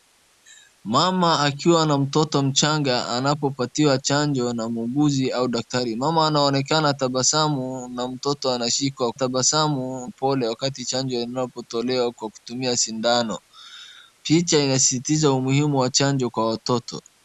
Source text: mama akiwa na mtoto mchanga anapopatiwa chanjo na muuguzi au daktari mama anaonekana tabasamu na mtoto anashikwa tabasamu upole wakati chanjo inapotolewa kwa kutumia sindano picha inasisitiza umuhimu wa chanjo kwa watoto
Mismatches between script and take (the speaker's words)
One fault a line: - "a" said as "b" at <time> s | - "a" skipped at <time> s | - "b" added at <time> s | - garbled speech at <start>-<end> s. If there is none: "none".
none